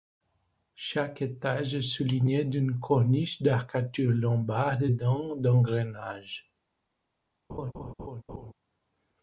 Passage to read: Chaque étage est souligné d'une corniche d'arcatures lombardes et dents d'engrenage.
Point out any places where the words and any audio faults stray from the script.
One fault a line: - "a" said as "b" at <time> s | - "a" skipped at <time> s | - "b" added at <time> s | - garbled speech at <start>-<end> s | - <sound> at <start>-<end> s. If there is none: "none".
- laugh at 7.5-8.5 s